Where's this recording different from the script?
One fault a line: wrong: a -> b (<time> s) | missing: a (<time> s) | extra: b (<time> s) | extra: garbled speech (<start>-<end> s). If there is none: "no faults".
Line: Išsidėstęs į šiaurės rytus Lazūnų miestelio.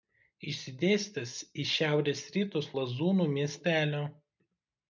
no faults